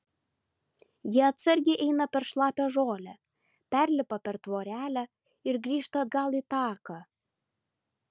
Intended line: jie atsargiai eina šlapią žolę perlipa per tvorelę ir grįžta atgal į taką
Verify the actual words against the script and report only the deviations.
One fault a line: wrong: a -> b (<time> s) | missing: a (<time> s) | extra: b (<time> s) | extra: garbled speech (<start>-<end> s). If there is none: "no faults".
extra: per (2.1 s)